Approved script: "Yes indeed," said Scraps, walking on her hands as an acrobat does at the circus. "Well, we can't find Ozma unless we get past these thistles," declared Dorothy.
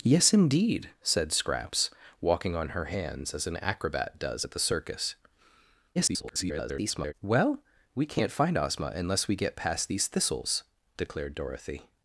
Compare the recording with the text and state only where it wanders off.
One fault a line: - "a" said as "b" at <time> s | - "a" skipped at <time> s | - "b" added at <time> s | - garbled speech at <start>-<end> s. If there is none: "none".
- garbled speech at 6.0-7.1 s